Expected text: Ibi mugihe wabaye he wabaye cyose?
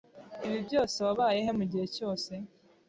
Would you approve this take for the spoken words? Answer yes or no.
no